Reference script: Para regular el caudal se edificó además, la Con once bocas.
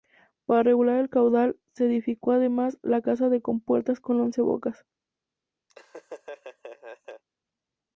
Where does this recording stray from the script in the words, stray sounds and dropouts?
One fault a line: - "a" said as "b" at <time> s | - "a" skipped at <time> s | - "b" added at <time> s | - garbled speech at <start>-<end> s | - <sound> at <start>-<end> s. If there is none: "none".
- "Casa de Compuertas" added at 3.0 s
- laugh at 5.7-7.2 s